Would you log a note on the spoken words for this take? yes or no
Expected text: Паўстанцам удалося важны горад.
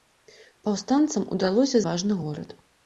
no